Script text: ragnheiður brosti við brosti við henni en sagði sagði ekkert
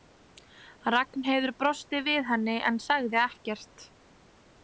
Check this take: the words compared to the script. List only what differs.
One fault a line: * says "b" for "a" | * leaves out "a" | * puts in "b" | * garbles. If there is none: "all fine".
* leaves out "brosti við"
* leaves out "sagði"